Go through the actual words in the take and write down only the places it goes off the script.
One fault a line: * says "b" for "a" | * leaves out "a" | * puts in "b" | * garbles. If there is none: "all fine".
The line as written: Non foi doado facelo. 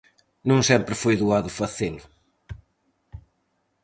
* puts in "sempre"